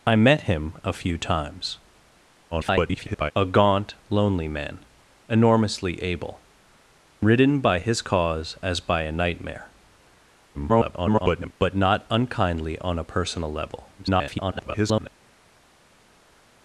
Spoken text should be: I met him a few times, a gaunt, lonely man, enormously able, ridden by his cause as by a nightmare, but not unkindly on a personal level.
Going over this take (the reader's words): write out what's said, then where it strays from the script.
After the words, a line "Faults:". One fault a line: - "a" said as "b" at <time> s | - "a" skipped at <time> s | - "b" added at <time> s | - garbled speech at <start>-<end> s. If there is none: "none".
I met him a few times, [garbled] a gaunt, lonely man, enormously able, ridden by his cause as by a nightmare, [garbled] but not unkindly on a personal level. [garbled]
Faults:
- garbled speech at 2.5-3.3 s
- garbled speech at 10.5-11.5 s
- garbled speech at 14.0-15.1 s